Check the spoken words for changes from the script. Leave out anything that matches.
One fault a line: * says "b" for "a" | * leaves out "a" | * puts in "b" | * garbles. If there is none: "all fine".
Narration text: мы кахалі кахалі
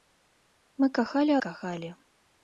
all fine